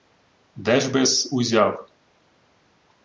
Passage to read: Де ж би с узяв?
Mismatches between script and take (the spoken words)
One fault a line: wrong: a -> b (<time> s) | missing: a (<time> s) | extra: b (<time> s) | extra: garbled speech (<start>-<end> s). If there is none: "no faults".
no faults